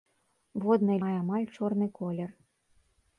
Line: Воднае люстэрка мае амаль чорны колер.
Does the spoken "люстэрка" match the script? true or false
false